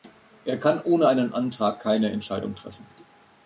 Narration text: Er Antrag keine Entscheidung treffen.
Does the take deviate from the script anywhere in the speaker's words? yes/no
yes